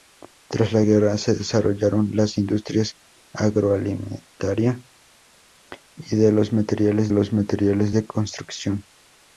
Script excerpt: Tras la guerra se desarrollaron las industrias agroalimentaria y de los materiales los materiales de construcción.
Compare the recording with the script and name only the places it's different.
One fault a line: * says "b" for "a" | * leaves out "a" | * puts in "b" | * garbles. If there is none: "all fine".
all fine